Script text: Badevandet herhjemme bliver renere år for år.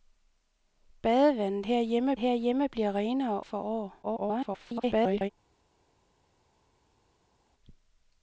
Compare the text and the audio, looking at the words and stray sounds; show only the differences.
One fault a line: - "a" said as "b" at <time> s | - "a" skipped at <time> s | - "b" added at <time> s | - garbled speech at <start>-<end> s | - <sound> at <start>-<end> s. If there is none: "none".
- "herhjemme" added at 2.2 s
- "år" skipped at 3.4 s
- garbled speech at 4.0-5.3 s